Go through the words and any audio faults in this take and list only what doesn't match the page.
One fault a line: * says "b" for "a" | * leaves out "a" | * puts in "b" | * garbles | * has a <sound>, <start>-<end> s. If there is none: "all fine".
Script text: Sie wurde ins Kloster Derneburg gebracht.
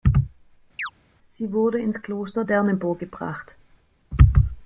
* has a chirp, 0.8-0.9 s